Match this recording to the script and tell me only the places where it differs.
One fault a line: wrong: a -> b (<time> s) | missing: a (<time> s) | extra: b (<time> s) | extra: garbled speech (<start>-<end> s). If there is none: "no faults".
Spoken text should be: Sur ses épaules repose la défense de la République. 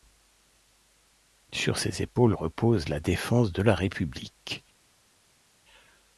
no faults